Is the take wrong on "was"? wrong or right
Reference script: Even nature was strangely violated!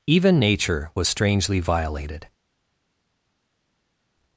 right